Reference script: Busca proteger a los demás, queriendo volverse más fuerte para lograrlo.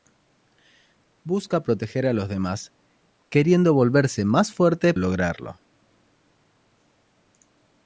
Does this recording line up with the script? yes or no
no